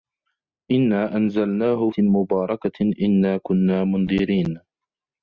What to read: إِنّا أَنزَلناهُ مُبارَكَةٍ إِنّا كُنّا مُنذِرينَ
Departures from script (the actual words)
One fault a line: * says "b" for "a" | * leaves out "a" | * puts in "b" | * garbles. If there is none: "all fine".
all fine